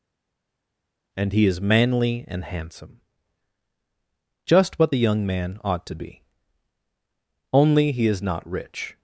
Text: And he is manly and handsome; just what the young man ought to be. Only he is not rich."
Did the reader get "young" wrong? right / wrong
right